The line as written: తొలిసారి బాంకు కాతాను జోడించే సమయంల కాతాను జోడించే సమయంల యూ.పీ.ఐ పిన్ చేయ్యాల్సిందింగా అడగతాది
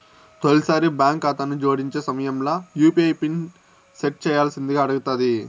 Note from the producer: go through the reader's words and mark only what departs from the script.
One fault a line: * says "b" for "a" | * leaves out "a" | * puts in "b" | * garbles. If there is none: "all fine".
* leaves out "కాతాను జోడించే సమయంల"
* puts in "సెట్"